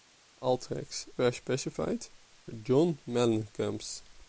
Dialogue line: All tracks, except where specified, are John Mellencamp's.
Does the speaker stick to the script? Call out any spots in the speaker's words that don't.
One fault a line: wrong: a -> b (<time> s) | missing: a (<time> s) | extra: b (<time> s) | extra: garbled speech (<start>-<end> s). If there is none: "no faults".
missing: except (1.1 s)
missing: are (2.1 s)